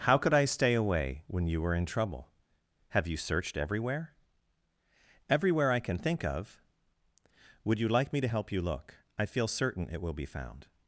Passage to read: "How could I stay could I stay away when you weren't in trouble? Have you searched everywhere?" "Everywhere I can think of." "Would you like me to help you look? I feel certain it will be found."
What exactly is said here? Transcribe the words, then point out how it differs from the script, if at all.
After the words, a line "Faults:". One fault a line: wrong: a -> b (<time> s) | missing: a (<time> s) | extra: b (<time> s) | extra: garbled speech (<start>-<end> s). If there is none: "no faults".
"How could I stay away when you were in trouble? Have you searched everywhere?" "Everywhere I can think of." "Would you like me to help you look? I feel certain it will be found."
Faults:
missing: could I stay (0.7 s)
wrong: weren't -> were (1.6 s)